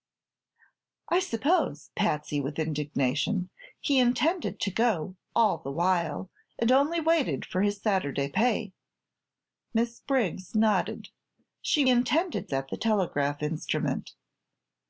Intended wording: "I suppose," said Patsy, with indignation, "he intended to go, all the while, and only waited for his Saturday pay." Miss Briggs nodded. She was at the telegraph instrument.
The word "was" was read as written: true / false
false